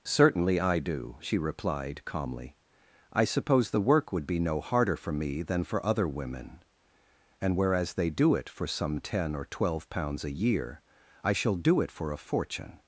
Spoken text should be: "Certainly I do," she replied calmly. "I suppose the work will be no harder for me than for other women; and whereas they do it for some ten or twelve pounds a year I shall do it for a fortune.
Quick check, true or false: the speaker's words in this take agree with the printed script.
false